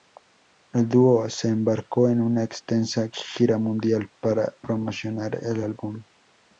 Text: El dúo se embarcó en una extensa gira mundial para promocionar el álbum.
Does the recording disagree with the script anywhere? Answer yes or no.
no